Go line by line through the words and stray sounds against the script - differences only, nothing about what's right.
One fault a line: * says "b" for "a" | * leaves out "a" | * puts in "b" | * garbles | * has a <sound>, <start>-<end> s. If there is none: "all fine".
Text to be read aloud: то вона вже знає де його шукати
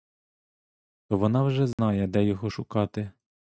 * has a dropout, 1.7-1.8 s